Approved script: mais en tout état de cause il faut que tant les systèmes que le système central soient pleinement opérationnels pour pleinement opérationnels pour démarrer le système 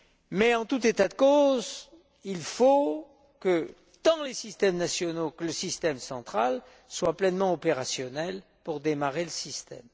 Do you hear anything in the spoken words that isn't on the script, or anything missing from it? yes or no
yes